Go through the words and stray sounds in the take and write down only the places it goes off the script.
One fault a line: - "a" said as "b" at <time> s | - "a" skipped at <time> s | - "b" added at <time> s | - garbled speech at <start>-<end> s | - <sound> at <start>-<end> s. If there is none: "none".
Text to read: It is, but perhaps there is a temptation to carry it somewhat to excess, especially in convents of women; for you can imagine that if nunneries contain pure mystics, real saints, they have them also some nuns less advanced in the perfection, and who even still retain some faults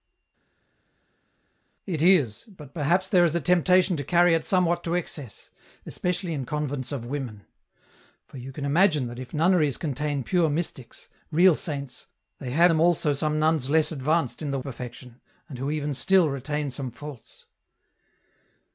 none